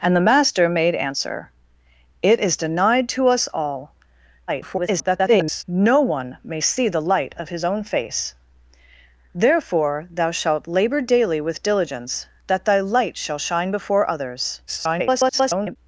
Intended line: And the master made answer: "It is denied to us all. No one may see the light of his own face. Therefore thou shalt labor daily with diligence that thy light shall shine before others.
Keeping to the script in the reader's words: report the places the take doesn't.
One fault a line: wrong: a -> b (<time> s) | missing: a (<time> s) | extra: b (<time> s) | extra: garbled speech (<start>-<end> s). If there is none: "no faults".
extra: garbled speech (4.5-5.6 s)
extra: garbled speech (14.7-15.8 s)